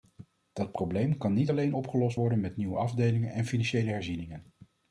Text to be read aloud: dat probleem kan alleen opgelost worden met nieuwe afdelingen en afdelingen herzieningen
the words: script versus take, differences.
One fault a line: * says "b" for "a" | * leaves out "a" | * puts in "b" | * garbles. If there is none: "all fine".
* puts in "niet"
* says "financiële" for "afdelingen"